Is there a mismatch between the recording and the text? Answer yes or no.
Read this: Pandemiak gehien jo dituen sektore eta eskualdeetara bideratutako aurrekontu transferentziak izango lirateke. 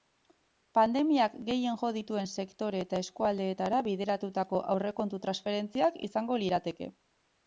no